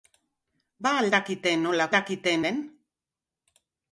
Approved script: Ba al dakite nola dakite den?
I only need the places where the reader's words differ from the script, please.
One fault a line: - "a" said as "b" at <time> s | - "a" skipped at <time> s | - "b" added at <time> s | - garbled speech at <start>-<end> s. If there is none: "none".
none